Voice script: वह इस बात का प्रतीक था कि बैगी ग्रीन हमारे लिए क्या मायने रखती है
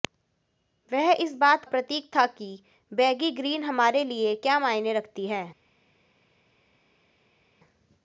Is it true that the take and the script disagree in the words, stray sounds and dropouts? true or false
true